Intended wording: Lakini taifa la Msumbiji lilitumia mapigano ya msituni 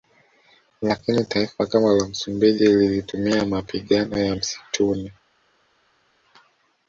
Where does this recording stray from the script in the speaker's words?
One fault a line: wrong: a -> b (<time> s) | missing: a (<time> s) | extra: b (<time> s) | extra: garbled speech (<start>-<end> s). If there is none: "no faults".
extra: kama (1.6 s)